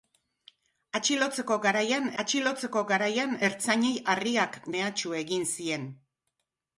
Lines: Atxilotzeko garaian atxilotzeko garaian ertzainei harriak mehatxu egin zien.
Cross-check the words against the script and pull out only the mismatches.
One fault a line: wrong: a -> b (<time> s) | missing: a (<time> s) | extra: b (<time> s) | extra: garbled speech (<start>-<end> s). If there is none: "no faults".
no faults